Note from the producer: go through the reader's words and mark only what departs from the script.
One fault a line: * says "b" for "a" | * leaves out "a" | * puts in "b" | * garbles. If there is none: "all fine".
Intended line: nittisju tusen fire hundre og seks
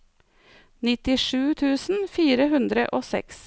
all fine